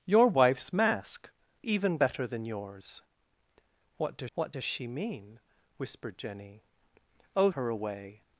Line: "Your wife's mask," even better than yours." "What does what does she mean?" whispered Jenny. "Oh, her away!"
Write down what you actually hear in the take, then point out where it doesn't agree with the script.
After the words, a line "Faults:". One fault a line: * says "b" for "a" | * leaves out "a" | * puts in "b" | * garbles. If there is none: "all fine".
"Your wife's mask," even better than yours." "What does what does she mean?" whispered Jenny. "Oh, her away!"
Faults:
all fine